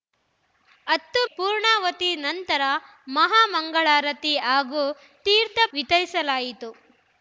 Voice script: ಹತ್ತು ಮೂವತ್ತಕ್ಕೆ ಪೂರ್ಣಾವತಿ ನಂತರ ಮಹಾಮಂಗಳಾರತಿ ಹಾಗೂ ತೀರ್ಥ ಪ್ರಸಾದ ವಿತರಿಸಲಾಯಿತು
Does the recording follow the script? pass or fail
fail